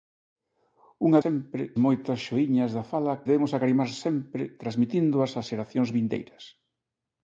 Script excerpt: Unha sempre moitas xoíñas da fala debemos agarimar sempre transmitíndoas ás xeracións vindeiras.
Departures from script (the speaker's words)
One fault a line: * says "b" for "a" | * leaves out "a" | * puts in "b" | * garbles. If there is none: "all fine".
all fine